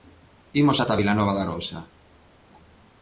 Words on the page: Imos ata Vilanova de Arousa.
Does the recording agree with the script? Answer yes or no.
yes